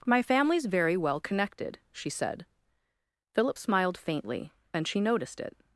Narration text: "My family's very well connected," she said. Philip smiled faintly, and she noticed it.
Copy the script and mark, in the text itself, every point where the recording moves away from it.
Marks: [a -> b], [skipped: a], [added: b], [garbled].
"My family's very well connected," she said. Philip smiled faintly, and she noticed it.